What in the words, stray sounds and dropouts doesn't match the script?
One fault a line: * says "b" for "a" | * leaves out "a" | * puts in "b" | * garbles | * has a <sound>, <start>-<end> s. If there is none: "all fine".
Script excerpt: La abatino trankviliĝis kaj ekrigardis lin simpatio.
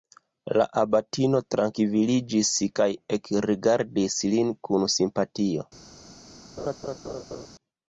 * puts in "kun"
* has a laugh, 6.6-7.5 s